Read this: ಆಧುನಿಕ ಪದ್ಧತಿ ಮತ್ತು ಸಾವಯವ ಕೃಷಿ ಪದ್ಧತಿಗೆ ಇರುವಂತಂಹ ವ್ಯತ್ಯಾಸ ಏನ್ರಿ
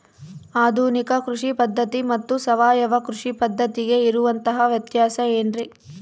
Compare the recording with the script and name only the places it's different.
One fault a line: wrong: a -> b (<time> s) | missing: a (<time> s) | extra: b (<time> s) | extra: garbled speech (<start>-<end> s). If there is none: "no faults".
extra: ಕೃಷಿ (1.2 s)